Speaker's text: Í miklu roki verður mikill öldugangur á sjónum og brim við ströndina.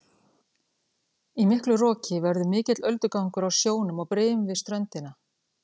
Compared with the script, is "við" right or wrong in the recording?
right